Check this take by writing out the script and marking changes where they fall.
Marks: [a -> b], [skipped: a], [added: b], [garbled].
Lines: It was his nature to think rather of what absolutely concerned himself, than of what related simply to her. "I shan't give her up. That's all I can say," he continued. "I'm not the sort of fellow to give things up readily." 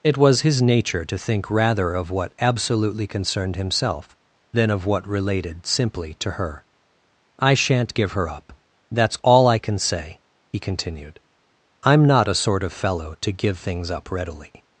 It was his nature to think rather of what absolutely concerned himself, than of what related simply to her. "I shan't give her up. That's all I can say," he continued. "I'm not [the -> a] sort of fellow to give things up readily."